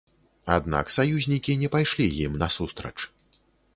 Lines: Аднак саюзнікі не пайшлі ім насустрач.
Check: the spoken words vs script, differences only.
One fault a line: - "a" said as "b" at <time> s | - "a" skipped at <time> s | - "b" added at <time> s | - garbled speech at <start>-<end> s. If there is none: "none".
none